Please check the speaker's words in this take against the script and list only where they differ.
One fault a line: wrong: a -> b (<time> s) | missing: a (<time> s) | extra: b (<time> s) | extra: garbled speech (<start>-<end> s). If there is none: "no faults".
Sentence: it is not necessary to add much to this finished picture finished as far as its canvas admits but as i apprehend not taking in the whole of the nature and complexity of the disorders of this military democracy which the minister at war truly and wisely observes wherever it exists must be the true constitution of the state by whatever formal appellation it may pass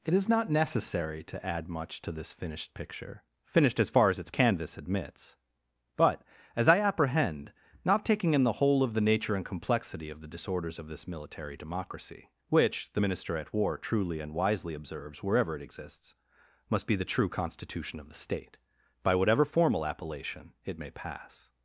no faults